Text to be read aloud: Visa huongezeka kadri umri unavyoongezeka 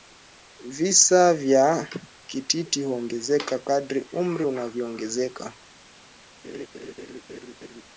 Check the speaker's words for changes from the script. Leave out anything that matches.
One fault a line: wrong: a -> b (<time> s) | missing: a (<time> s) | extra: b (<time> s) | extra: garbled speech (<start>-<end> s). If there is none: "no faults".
extra: vya kititi (1.3 s)